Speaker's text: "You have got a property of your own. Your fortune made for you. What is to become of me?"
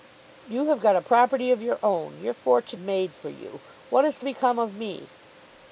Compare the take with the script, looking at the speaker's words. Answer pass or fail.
pass